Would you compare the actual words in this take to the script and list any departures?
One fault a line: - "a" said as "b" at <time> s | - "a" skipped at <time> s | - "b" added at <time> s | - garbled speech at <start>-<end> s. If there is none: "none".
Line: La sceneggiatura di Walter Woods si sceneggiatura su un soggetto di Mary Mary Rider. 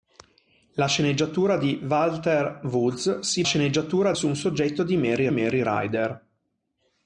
none